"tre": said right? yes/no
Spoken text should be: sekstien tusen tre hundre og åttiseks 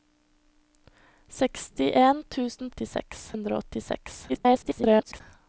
no